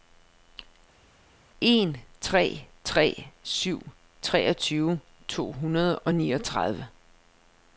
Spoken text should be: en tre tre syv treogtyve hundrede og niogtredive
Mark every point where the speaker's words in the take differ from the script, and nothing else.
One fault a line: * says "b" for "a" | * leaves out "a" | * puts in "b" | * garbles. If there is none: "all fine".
* puts in "to"